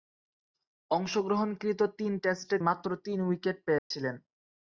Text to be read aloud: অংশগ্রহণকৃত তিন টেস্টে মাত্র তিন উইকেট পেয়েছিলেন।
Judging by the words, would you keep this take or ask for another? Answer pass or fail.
pass